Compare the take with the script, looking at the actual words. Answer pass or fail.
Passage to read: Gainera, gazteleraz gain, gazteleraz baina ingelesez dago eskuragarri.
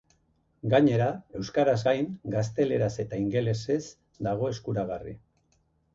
fail